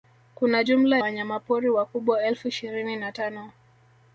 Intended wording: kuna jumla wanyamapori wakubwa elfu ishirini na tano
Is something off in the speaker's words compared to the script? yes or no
no